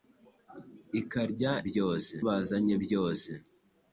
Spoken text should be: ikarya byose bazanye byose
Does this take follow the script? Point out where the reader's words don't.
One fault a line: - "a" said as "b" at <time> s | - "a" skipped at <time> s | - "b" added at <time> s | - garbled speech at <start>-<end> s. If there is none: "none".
none